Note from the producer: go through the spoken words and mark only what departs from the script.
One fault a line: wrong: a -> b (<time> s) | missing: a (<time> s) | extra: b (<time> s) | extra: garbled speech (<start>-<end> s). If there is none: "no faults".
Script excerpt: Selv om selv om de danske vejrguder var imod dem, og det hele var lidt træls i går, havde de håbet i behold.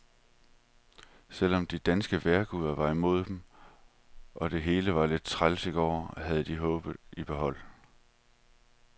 missing: selv om (1.7 s)